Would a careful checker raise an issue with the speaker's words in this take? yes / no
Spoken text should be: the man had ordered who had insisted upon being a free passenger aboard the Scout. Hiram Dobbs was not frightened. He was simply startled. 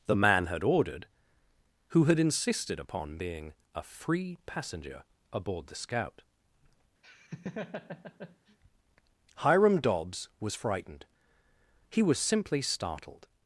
yes